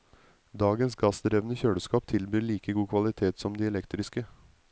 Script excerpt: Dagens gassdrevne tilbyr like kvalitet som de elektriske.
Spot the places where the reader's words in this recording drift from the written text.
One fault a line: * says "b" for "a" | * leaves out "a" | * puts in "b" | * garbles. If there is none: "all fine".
* puts in "kjøleskap"
* puts in "god"